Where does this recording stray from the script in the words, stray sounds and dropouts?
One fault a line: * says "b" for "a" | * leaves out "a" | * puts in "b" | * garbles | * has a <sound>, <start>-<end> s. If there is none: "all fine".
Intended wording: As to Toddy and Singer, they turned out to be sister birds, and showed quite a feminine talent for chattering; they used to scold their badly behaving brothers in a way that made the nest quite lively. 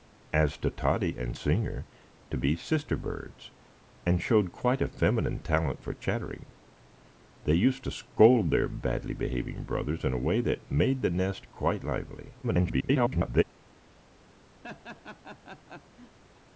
* leaves out "they turned out"
* garbles
* has a laugh, 14.6-16.2 s